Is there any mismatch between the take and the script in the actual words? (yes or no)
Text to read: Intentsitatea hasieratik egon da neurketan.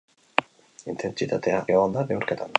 yes